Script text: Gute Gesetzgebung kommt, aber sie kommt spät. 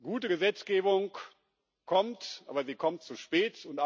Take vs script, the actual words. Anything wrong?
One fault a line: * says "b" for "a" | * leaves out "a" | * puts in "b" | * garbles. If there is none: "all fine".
* puts in "zu"